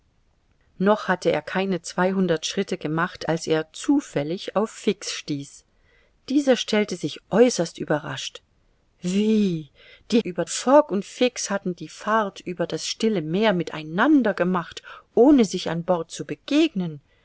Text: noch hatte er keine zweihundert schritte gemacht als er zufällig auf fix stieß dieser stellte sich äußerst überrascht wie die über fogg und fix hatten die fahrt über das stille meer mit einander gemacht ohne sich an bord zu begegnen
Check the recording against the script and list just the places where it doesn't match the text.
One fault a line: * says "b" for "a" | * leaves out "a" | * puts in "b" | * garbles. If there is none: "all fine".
all fine